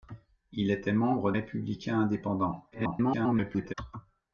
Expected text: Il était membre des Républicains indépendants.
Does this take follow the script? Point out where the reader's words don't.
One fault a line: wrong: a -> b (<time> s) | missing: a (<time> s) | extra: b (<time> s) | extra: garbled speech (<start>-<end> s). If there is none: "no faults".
missing: des (1.3 s)
extra: garbled speech (2.7-3.7 s)